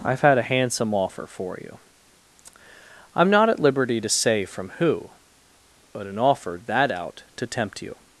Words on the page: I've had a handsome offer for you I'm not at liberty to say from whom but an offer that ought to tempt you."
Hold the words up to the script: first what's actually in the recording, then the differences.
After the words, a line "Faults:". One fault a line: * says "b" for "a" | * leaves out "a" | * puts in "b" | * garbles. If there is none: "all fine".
I've had a handsome offer for you I'm not at liberty to say from who but an offer that out to tempt you."
Faults:
* says "who" for "whom"
* says "out" for "ought"